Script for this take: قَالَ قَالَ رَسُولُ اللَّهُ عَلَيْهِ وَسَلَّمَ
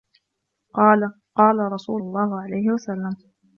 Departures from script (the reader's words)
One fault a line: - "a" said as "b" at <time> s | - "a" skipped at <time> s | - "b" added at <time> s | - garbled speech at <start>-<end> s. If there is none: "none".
none